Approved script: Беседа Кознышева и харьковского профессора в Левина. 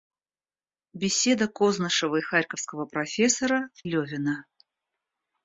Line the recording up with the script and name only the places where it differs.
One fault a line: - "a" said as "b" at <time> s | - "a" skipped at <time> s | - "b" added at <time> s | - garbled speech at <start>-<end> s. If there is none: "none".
none